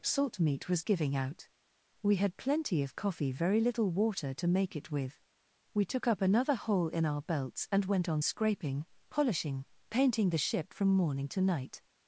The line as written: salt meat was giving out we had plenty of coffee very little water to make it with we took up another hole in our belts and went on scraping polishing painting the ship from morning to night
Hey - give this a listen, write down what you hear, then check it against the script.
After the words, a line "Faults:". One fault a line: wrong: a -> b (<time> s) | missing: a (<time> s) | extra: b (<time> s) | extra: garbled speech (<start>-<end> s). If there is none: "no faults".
salt meat was giving out we had plenty of coffee very little water to make it with we took up another hole in our belts and went on scraping polishing painting the ship from morning to night
Faults:
no faults